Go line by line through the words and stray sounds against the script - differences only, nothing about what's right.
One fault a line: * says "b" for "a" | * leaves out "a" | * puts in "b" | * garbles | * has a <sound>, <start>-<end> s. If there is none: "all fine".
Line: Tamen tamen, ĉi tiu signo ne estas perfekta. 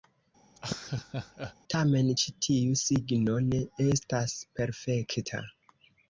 * has a laugh, 0.6-1.6 s
* leaves out "tamen"